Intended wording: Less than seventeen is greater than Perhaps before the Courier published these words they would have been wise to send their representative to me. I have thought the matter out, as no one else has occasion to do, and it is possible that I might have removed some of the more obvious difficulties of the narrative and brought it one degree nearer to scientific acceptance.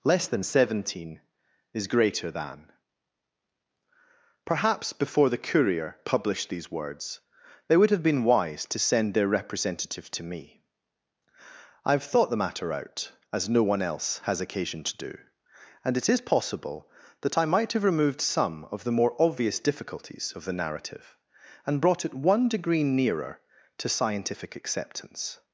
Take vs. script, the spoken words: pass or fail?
pass